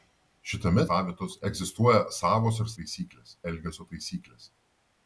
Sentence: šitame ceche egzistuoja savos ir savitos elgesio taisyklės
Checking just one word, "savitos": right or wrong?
wrong